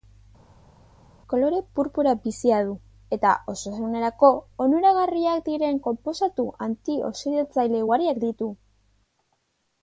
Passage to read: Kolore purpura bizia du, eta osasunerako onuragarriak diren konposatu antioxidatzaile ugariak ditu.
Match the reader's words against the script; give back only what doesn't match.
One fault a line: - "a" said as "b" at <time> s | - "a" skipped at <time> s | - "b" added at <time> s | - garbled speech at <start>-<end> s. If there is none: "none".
none